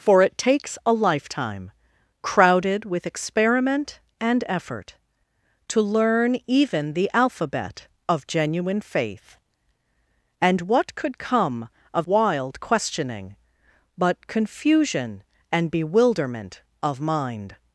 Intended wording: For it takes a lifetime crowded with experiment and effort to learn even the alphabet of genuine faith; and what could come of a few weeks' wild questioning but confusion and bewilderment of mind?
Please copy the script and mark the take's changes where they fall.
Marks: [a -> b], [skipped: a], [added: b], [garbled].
For it takes a lifetime crowded with experiment and effort to learn even the alphabet of genuine faith; and what could come of [skipped: a few weeks'] wild questioning but confusion and bewilderment of mind?